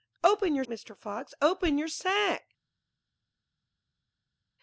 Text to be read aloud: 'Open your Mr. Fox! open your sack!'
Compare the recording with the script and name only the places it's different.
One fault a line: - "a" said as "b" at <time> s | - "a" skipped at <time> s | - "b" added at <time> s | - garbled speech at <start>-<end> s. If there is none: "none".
none